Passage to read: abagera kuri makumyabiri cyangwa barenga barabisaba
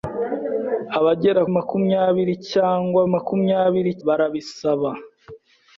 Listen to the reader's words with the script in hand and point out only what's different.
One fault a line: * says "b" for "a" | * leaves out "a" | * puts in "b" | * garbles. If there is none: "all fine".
* leaves out "kuri"
* says "makumyabiri" for "barenga"